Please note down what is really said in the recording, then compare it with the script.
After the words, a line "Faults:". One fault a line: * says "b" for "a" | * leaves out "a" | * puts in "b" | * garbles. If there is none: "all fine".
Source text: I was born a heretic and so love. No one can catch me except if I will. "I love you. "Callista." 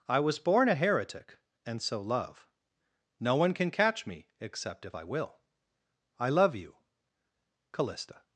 I was born a heretic and so love. No one can catch me except if I will. "I love you. "Callista."
Faults:
all fine